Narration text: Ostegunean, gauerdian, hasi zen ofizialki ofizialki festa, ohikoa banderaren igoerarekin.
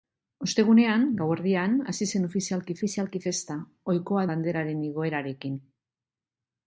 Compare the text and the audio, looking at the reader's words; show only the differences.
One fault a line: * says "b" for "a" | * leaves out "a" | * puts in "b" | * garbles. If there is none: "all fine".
all fine